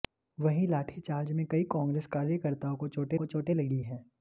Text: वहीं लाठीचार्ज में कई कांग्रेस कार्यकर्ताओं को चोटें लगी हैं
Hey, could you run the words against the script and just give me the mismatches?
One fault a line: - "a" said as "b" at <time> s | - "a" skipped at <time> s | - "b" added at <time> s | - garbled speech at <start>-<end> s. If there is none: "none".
- "को चोटें" added at 3.1 s